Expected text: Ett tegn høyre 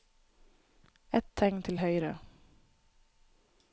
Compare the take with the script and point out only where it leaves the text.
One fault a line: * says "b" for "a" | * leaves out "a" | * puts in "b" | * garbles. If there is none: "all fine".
* puts in "til"